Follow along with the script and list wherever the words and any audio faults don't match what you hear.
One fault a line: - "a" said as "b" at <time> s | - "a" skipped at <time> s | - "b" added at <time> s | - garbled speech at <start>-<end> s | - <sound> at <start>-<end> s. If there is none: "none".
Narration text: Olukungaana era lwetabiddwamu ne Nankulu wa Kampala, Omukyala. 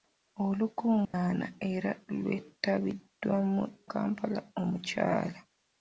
- dropout at 1.0-1.1 s
- "ne Nankulu wa" skipped at 3.6 s